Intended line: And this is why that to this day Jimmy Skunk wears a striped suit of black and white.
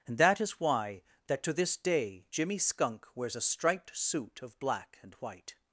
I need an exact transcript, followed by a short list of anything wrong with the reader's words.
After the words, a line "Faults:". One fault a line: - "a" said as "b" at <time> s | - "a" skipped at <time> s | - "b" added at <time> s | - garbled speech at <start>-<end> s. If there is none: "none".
And that is why that to this day Jimmy Skunk wears a striped suit of black and white.
Faults:
- "this" said as "that" at 0.2 s